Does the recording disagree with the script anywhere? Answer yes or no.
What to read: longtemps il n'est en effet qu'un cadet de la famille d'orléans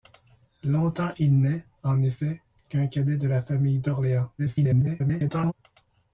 yes